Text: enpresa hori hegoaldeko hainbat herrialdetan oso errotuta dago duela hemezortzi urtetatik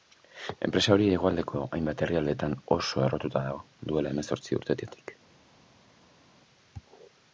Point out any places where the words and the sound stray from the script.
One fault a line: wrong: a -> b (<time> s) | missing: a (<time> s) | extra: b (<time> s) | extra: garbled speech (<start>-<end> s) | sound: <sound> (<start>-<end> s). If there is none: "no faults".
no faults